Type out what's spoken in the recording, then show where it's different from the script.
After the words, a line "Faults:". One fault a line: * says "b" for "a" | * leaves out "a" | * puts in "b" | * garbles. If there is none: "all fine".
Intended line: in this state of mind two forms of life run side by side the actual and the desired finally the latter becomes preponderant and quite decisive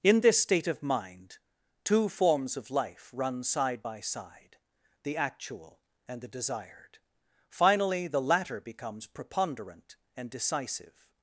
in this state of mind two forms of life run side by side the actual and the desired finally the latter becomes preponderant and decisive
Faults:
* leaves out "quite"